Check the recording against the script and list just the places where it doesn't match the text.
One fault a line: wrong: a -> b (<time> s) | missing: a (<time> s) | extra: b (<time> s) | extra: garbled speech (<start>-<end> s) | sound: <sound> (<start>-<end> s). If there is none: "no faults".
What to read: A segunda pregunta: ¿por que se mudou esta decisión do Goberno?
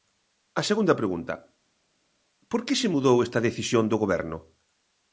no faults